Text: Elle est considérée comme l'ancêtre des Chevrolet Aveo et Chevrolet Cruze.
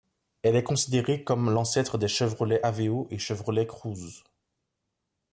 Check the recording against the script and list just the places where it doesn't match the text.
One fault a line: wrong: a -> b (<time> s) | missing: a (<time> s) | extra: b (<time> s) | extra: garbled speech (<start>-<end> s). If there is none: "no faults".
no faults